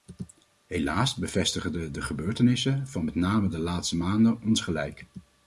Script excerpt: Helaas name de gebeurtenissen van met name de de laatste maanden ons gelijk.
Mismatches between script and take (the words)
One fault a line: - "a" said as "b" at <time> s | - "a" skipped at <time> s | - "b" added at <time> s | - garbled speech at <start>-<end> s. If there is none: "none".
- "name" said as "bevestigen" at 1.1 s
- "de" skipped at 3.6 s